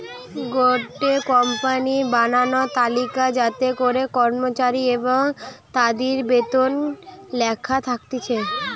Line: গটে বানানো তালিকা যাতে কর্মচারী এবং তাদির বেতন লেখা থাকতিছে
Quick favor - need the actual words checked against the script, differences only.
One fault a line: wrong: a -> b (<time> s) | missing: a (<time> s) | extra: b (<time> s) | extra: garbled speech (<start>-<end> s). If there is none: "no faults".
extra: কোম্পানির (1.3 s)
extra: করে (3.8 s)